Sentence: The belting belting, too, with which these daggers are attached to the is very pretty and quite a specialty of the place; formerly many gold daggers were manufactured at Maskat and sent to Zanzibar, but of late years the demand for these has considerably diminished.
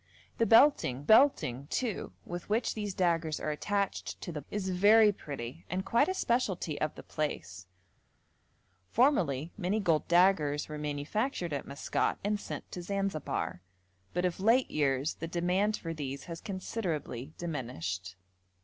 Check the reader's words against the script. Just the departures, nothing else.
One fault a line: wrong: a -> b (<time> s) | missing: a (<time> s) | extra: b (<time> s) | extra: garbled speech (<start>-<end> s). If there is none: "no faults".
no faults